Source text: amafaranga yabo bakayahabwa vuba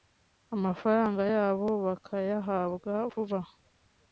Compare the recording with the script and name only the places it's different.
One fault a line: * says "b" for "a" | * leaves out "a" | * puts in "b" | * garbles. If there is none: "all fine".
all fine